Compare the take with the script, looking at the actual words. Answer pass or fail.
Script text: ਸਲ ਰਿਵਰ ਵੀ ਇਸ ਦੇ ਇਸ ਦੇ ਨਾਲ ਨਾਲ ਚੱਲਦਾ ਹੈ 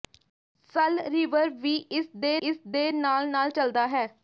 pass